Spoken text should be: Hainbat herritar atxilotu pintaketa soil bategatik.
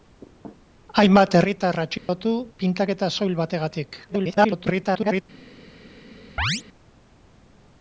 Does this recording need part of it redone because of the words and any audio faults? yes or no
yes